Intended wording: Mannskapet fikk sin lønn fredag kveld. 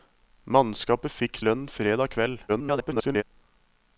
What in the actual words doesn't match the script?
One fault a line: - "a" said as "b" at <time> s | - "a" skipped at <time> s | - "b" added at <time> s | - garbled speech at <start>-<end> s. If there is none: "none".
- "sin" skipped at 1.4 s
- garbled speech at 2.5-3.2 s